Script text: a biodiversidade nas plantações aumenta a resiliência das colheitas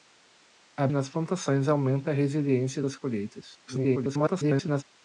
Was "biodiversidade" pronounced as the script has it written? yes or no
no